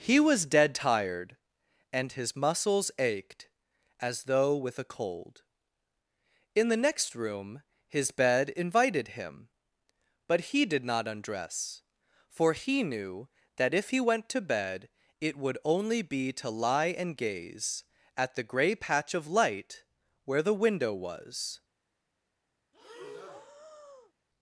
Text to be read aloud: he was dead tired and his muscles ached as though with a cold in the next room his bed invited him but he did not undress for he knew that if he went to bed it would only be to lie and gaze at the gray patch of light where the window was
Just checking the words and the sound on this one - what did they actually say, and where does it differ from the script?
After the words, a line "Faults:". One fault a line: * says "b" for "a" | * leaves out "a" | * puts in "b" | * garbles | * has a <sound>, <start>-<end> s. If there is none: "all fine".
he was dead tired and his muscles ached as though with a cold in the next room his bed invited him but he did not undress for he knew that if he went to bed it would only be to lie and gaze at the gray patch of light where the window was
Faults:
* has a breath, 22.7-24.1 s